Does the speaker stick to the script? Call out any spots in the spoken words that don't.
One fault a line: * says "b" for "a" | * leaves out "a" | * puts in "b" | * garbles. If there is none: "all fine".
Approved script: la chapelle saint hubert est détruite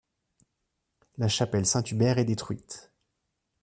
all fine